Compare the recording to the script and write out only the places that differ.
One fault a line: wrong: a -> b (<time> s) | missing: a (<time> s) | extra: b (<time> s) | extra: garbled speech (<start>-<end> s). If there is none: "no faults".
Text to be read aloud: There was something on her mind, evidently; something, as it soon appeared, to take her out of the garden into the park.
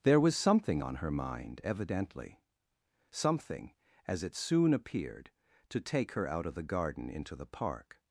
no faults